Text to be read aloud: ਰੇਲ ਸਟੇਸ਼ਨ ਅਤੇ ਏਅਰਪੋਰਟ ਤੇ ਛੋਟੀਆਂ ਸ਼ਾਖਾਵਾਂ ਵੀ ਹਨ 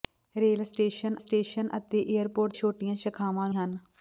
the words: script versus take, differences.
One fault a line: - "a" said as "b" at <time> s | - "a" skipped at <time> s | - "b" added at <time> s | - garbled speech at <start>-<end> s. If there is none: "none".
- "ਸਟੇਸ਼ਨ" added at 1.2 s
- "ਤੇ" skipped at 2.5 s
- "ਵੀ" skipped at 3.5 s